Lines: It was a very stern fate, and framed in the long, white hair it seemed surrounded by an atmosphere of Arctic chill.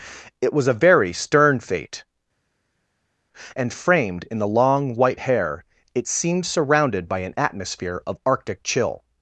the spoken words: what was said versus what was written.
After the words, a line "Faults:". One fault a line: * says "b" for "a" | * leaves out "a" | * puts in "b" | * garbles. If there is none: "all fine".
It was a very stern fate, and framed in the long, white hair it seemed surrounded by an atmosphere of Arctic chill.
Faults:
all fine